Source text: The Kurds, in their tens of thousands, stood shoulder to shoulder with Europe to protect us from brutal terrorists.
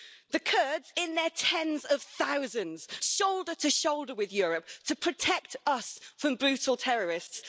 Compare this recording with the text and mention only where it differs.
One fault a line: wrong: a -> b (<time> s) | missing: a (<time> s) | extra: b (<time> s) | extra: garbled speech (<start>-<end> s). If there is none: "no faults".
missing: stood (2.9 s)